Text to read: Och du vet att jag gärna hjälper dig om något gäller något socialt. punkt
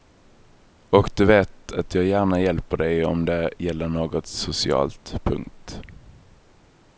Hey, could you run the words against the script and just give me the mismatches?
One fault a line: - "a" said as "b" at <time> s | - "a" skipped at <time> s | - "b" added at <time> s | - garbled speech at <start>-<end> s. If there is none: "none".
- "något" said as "det" at 3.3 s